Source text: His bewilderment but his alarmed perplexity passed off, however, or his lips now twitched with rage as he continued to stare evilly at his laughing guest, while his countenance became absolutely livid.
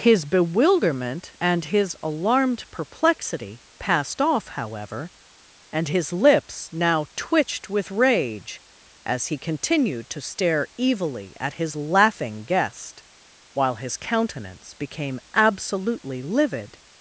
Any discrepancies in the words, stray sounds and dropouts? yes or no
yes